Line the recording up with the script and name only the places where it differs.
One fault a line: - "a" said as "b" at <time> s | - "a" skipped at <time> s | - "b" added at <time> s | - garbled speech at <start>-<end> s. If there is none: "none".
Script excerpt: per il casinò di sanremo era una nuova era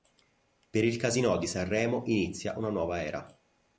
- "era" said as "inizia" at 2.1 s